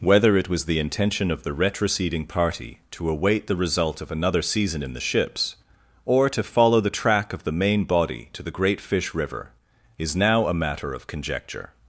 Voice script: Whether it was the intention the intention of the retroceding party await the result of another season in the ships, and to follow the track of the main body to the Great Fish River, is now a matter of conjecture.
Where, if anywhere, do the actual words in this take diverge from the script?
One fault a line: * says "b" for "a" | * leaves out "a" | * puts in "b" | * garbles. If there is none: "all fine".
* leaves out "the intention"
* puts in "to"
* says "or" for "and"